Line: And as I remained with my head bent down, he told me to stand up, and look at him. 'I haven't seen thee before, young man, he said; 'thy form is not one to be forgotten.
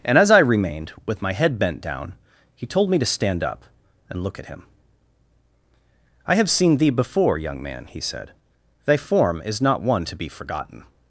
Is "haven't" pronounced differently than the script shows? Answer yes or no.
yes